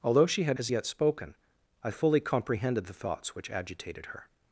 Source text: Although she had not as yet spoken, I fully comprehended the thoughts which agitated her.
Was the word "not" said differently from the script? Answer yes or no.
yes